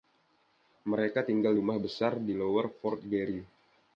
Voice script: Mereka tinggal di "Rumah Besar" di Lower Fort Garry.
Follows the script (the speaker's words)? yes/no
no